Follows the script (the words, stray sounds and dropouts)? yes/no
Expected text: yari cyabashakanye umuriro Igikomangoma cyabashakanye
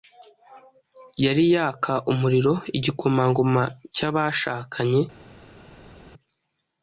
no